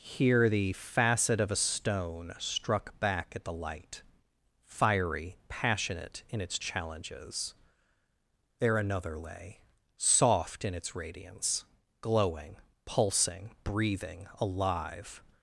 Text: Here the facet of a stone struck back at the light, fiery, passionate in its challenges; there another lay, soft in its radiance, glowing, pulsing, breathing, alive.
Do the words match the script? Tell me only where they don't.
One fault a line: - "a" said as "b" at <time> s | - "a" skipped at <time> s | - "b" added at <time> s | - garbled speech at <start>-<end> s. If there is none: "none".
none